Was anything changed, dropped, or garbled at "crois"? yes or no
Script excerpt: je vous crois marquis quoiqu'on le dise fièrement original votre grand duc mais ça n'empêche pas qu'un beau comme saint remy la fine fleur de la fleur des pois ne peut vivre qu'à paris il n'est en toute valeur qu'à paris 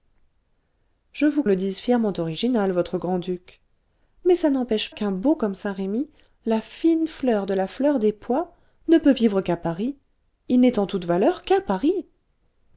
yes